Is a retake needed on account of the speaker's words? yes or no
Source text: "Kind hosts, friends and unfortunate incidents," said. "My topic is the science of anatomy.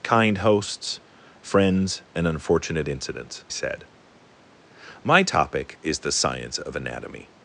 no